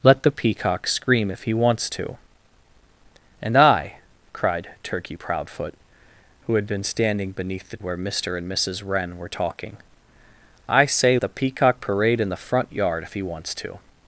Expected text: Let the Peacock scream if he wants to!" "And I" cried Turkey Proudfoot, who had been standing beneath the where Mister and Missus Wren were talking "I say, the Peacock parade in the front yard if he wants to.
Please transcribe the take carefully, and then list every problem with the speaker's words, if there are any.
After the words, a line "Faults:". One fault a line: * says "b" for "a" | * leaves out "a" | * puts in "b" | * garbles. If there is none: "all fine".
Let the Peacock scream if he wants to!" "And I" cried Turkey Proudfoot, who had been standing beneath the where Mister and Missus Wren were talking "I say, the Peacock parade in the front yard if he wants to.
Faults:
all fine